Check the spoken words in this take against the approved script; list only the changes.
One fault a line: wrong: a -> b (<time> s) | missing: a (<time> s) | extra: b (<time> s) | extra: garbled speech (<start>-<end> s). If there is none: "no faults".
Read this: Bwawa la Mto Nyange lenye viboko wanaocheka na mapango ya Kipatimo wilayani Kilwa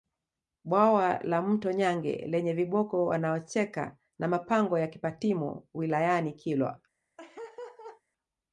no faults